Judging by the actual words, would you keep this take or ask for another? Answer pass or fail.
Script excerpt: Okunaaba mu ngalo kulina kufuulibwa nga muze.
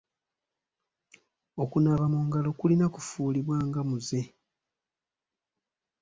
pass